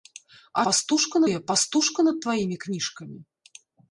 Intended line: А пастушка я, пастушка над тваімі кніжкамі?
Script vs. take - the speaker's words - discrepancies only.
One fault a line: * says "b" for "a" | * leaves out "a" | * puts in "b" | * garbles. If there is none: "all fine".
all fine